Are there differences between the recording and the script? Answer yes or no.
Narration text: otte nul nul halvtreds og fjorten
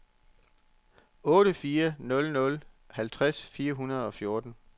yes